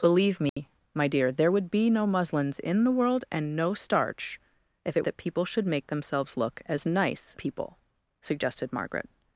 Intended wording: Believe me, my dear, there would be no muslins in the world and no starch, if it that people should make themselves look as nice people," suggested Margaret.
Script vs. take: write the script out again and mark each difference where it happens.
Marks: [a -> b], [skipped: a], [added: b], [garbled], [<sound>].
Believe me, [dropout] my dear, there would be no muslins in the world and no starch, if it that people should make themselves look as nice people," suggested Margaret.